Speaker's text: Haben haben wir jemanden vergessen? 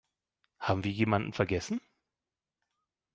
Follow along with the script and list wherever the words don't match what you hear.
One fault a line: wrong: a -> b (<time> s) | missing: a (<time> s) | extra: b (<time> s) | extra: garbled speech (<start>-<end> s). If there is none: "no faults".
missing: haben (0.8 s)